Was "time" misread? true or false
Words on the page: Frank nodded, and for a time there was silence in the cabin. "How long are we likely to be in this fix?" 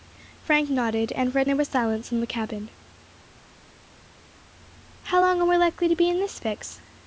true